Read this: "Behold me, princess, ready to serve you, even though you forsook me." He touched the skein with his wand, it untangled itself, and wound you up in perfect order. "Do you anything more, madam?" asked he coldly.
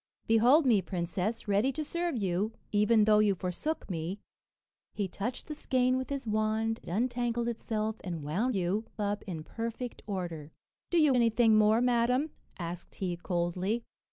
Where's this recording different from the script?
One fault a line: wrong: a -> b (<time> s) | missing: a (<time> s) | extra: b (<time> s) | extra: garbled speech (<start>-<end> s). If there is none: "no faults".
no faults